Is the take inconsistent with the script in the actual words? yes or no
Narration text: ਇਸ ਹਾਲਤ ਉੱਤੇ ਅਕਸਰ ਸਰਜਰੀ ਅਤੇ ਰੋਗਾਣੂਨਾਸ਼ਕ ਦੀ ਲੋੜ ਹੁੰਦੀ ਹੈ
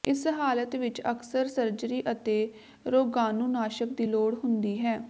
yes